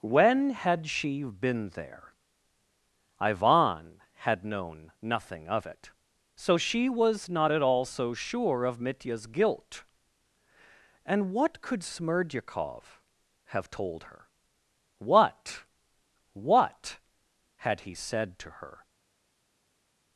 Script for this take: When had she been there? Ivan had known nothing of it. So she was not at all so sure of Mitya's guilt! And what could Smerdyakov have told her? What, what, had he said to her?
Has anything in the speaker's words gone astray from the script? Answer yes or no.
no